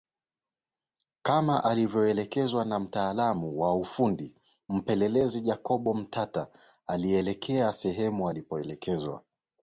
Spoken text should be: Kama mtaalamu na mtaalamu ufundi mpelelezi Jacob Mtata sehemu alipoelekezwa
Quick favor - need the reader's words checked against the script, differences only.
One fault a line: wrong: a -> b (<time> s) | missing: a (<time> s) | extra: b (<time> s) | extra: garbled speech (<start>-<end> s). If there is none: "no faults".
wrong: mtaalamu -> alivyoelekezwa (1.6 s)
extra: wa (3.6 s)
extra: alielekea (6.9 s)